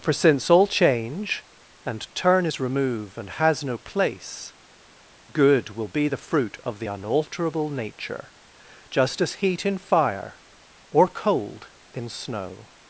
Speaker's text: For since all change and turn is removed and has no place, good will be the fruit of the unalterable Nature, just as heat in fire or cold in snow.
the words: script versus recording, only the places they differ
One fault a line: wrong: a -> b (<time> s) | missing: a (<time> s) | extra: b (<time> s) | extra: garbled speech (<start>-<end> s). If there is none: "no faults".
wrong: removed -> remove (2.6 s)